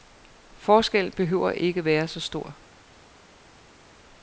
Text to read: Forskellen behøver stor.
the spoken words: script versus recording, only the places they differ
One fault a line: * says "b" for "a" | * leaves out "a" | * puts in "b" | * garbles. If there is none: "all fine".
* puts in "ikke være så"